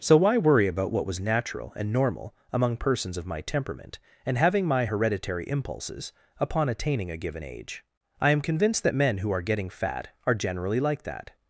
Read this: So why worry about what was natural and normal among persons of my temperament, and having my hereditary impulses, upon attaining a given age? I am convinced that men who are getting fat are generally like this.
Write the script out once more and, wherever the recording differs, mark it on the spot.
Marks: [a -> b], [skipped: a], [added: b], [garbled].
So why worry about what was natural and normal among persons of my temperament, and having my hereditary impulses, upon attaining a given age? I am convinced that men who are getting fat are generally like [this. -> that]